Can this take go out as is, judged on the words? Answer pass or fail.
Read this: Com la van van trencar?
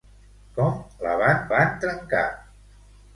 pass